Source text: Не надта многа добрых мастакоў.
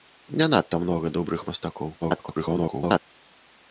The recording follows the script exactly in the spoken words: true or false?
false